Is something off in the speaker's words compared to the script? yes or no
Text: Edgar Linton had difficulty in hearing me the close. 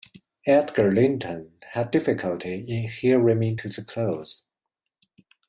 yes